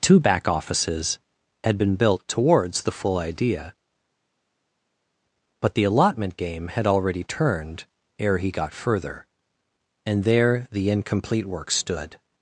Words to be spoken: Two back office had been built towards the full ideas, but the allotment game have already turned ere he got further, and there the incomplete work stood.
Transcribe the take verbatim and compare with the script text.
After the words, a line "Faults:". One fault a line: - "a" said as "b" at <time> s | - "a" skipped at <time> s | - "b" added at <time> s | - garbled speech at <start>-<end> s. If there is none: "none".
Two back offices had been built towards the full idea, but the allotment game had already turned ere he got further, and there the incomplete work stood.
Faults:
- "office" said as "offices" at 0.5 s
- "ideas" said as "idea" at 3.2 s
- "have" said as "had" at 6.7 s